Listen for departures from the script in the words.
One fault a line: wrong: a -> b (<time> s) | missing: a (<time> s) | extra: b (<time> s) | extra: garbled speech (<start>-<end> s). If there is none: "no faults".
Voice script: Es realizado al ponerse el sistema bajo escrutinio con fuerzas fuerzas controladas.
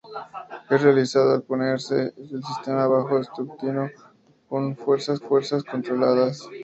no faults